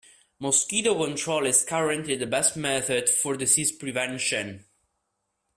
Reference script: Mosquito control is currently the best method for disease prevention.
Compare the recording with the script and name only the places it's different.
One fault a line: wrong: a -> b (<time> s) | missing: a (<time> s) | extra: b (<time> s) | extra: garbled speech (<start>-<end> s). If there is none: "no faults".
no faults